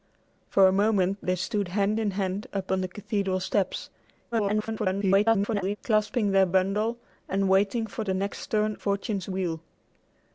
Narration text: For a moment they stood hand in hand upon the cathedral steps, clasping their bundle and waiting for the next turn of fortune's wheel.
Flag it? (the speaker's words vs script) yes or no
yes